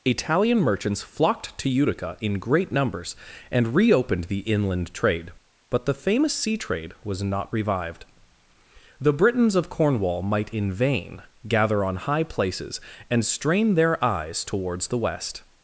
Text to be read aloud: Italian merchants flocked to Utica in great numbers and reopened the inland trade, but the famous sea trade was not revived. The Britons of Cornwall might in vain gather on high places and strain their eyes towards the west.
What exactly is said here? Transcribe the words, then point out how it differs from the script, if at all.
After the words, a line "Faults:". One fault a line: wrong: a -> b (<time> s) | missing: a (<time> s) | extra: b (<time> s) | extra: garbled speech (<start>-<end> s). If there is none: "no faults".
Italian merchants flocked to Utica in great numbers and reopened the inland trade, but the famous sea trade was not revived. The Britons of Cornwall might in vain gather on high places and strain their eyes towards the west.
Faults:
no faults